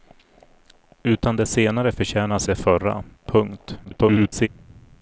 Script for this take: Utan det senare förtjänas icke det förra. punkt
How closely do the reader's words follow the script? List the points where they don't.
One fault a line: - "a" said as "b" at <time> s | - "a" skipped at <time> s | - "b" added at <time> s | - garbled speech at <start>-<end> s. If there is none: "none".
- "icke" skipped at 2.5 s
- garbled speech at 3.8-4.5 s